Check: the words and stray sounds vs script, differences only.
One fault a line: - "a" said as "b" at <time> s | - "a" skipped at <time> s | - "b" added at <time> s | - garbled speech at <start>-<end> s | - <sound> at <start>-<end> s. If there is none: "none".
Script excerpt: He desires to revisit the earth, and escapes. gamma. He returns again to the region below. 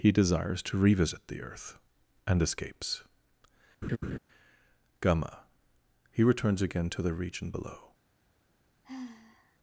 - laugh at 3.8-4.2 s
- sigh at 8.8-9.6 s